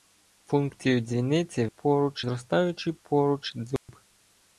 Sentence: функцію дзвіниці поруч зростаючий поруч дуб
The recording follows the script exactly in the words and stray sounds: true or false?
false